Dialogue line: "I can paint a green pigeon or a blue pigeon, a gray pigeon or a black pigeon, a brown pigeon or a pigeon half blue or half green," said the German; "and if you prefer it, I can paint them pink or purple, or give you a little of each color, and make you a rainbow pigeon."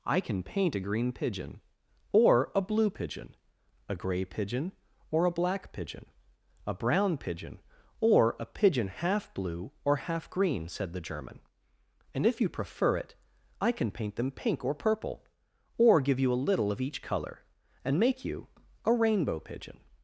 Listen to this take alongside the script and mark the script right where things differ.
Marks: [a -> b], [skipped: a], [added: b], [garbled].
"I can paint a green pigeon or a blue pigeon, a gray pigeon or a black pigeon, a brown pigeon or a pigeon half blue or half green," said the German; "and if you prefer it, I can paint them pink or purple, or give you a little of each color, and make you a rainbow pigeon."